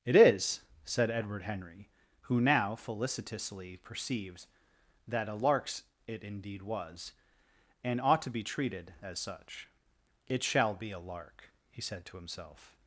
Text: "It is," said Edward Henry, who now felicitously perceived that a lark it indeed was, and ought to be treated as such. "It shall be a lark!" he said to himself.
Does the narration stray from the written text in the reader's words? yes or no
yes